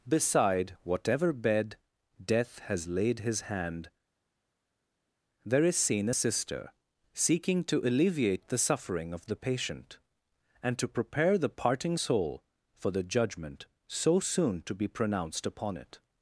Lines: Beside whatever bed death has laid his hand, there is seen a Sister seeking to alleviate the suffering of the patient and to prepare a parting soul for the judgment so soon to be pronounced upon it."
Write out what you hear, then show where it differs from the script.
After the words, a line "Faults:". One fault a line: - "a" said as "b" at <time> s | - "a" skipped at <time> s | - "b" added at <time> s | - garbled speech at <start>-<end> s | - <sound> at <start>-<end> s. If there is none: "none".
Beside whatever bed death has laid his hand, there is seen a Sister seeking to alleviate the suffering of the patient and to prepare the parting soul for the judgment so soon to be pronounced upon it."
Faults:
- "a" said as "the" at 11.4 s